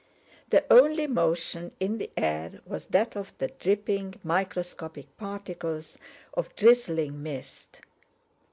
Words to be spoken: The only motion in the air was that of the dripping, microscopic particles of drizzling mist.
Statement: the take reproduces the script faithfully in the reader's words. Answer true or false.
true